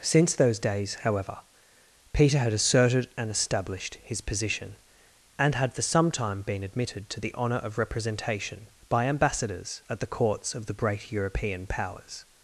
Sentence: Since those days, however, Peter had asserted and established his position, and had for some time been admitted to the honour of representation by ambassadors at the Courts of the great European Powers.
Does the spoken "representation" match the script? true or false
true